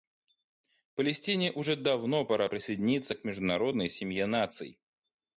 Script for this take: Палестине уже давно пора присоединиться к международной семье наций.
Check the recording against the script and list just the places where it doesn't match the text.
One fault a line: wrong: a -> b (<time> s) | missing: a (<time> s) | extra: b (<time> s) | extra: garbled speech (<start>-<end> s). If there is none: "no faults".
no faults